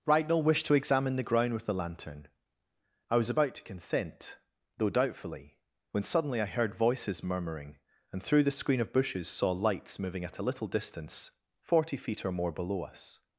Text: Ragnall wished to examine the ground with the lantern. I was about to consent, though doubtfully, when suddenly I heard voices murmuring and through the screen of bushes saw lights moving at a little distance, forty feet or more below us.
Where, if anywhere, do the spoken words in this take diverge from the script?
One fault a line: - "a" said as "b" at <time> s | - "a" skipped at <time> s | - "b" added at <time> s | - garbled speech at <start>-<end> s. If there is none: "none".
none